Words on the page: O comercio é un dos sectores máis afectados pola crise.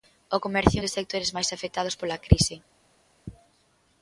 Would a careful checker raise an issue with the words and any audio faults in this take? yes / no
no